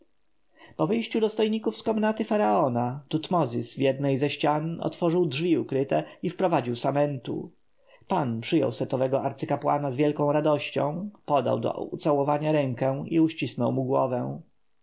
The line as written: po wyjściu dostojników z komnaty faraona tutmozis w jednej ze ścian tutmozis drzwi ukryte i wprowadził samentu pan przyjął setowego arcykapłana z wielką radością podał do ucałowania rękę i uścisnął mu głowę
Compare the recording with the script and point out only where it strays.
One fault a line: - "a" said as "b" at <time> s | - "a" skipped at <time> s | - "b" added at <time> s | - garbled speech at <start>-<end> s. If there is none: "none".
- "tutmozis" said as "otworzył" at 4.8 s